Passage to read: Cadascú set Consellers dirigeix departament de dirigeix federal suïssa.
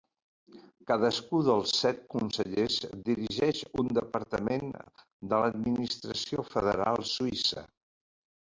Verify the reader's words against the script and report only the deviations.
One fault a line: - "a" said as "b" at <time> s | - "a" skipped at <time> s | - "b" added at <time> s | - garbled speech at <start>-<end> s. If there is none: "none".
- "dels" added at 1.5 s
- "un" added at 3.8 s
- "dirigeix" said as "l'administració" at 5.4 s